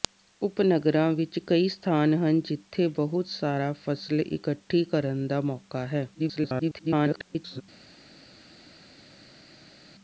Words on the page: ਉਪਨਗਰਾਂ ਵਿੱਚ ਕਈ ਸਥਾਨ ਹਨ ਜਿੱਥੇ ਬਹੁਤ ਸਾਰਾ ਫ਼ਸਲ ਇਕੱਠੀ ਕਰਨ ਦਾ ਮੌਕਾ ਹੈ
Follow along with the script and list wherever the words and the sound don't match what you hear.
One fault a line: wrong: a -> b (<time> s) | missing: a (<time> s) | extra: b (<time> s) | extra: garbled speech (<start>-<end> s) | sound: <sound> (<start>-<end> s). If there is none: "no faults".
extra: garbled speech (6.1-7.6 s)